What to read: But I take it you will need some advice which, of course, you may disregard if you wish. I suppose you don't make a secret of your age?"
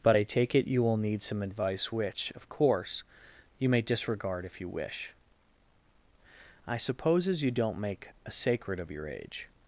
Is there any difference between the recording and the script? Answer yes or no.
yes